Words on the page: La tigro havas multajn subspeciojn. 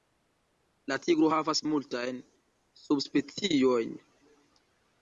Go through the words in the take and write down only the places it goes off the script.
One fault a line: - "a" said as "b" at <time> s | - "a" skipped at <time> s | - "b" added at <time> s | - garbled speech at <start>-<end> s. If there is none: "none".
none